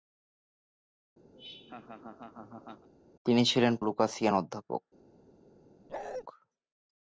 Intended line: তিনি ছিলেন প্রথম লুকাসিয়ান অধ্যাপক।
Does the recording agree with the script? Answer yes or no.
no